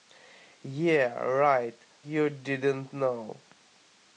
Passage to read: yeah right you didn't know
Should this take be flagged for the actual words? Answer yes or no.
no